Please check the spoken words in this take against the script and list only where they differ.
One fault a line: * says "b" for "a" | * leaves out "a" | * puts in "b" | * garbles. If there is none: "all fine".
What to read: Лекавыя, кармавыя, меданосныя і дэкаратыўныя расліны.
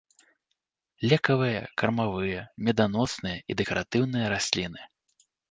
all fine